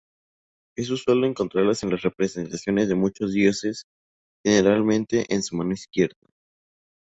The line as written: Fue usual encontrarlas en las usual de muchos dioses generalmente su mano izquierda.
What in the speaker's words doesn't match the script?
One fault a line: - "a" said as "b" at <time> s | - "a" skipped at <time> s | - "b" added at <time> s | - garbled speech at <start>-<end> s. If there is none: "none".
- "Fue" said as "Es" at 0.8 s
- "usual" said as "representaciones" at 2.0 s
- "en" added at 5.3 s